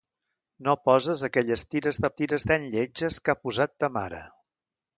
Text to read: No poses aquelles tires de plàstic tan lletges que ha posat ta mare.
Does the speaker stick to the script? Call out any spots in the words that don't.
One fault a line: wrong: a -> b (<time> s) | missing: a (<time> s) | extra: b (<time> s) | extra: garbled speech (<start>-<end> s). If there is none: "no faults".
wrong: plàstic -> tires (2.2 s)